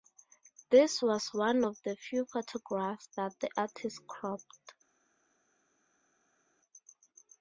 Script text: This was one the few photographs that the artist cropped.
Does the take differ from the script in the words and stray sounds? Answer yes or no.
yes